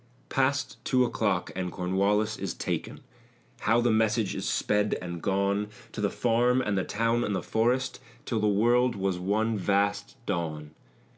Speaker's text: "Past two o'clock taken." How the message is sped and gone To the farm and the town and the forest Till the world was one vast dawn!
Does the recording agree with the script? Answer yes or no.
no